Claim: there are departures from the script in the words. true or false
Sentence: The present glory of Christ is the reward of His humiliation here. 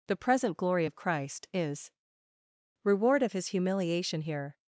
true